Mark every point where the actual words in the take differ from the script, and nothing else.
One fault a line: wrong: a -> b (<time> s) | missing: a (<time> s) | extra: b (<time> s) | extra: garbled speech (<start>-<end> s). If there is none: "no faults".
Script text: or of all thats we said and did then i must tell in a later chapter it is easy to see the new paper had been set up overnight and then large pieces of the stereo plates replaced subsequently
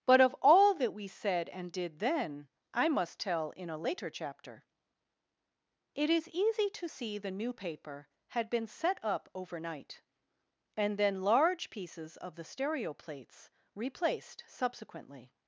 wrong: or -> but (0.1 s)
wrong: thats -> that (0.8 s)